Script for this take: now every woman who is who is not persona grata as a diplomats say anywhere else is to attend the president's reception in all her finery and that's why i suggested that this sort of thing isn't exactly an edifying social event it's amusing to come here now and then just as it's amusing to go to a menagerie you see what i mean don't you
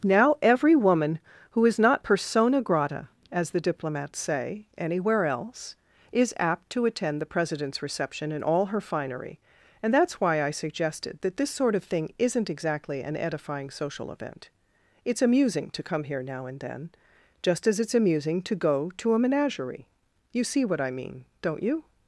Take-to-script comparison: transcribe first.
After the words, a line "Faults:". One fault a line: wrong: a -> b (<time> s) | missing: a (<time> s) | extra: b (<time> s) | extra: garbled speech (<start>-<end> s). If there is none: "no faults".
now every woman who is not persona grata as the diplomats say anywhere else is apt to attend the president's reception in all her finery and that's why i suggested that this sort of thing isn't exactly an edifying social event it's amusing to come here now and then just as it's amusing to go to a menagerie you see what i mean don't you
Faults:
missing: who is (1.8 s)
wrong: a -> the (3.5 s)
extra: apt (6.4 s)